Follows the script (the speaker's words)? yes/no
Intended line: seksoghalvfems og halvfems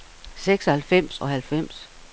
yes